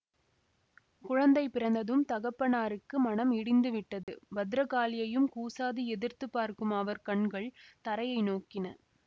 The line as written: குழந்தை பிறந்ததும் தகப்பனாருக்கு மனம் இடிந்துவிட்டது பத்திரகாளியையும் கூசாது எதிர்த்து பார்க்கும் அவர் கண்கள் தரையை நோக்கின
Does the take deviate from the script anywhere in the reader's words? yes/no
no